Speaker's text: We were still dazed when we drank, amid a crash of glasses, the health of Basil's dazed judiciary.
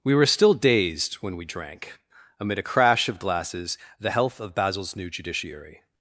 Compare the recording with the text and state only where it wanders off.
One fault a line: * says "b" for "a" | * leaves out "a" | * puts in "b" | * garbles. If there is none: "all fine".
* says "new" for "dazed"